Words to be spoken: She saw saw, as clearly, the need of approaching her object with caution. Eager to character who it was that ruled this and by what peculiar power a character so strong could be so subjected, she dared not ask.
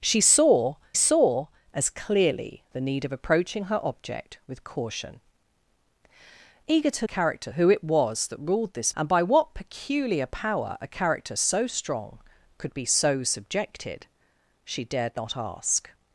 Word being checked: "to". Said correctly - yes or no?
yes